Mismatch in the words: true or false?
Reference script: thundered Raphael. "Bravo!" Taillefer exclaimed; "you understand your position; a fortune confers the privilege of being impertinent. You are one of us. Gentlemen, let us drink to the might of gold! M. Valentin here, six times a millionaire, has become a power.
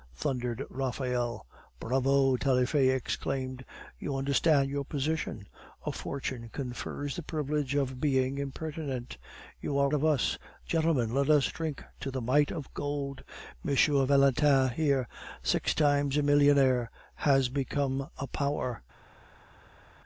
true